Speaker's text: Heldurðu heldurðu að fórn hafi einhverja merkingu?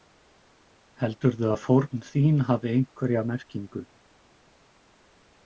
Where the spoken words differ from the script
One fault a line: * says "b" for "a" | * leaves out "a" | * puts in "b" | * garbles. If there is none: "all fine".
* leaves out "heldurðu"
* puts in "þín"